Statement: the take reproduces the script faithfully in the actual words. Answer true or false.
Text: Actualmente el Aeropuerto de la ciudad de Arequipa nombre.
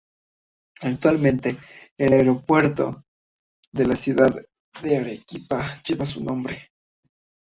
false